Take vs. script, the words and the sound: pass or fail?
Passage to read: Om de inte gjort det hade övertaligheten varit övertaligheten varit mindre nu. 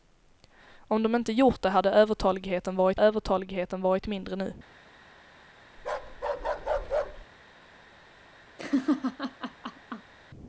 fail